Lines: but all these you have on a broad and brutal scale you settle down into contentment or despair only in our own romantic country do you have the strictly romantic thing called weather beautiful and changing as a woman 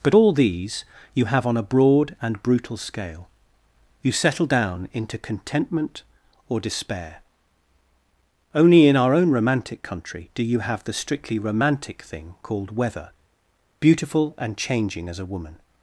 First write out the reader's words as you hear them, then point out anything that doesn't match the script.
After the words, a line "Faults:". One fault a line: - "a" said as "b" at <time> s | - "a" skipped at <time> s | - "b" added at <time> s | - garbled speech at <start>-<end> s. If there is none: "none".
but all these you have on a broad and brutal scale you settle down into contentment or despair only in our own romantic country do you have the strictly romantic thing called weather beautiful and changing as a woman
Faults:
none